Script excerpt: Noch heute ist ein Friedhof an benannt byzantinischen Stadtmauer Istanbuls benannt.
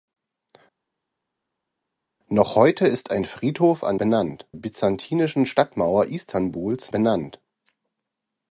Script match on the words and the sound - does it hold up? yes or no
yes